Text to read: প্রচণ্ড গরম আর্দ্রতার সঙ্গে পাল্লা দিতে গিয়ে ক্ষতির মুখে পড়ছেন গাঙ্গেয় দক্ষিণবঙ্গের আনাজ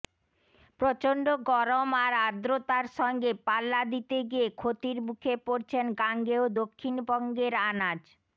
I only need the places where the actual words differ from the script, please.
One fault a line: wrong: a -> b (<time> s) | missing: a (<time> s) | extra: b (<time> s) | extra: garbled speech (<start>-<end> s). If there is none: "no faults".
extra: আর (2.0 s)